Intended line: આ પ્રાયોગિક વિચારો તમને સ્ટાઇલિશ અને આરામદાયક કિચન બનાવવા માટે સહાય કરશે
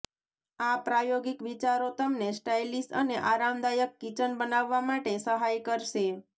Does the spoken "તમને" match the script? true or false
true